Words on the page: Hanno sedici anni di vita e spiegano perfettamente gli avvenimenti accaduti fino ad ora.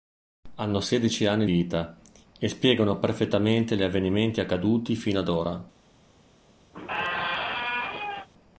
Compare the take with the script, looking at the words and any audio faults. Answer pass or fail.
fail